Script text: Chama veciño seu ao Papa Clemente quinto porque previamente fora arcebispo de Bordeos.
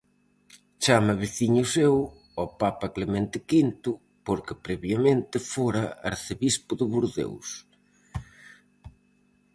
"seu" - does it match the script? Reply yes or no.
yes